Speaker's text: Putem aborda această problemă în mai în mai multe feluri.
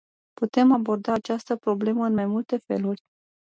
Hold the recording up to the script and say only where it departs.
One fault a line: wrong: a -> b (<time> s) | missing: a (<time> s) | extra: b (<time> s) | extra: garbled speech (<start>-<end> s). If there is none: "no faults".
missing: în mai (2.2 s)